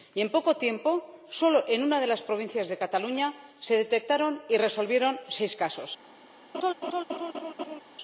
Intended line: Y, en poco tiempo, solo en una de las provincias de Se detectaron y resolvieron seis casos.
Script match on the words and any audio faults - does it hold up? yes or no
no